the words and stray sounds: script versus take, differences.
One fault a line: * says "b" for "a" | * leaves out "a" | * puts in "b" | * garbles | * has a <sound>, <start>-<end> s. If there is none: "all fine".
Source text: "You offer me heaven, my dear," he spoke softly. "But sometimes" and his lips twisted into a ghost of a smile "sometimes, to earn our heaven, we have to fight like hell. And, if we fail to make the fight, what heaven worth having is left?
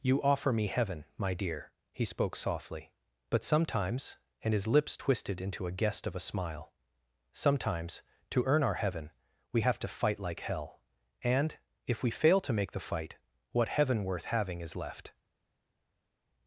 * says "guest" for "ghost"